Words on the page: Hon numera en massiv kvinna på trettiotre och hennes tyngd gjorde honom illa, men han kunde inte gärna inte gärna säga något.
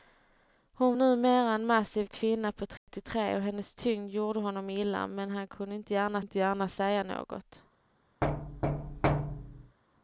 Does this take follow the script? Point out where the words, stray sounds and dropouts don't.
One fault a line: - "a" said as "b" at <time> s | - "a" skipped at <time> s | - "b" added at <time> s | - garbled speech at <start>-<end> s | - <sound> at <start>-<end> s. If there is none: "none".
- dropout at 2.8-2.9 s
- thud at 8.2-9.8 s